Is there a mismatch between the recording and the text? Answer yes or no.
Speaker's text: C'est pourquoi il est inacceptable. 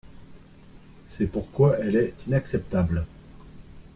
yes